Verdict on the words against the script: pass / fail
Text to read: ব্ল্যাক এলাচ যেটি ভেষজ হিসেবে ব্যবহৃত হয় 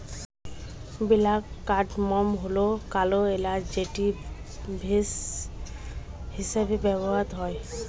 fail